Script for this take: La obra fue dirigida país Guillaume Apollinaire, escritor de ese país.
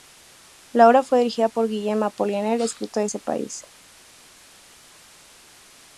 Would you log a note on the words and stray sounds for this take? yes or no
yes